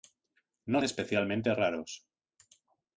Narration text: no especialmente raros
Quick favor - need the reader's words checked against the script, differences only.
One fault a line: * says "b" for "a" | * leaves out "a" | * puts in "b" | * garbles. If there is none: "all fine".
all fine